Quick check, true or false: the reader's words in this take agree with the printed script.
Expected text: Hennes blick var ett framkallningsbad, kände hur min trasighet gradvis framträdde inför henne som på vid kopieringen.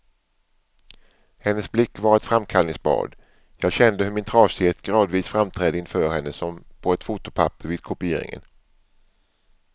false